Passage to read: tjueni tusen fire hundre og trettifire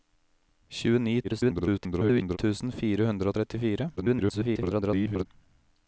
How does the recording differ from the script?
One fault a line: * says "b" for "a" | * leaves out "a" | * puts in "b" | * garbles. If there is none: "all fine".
* garbles
* garbles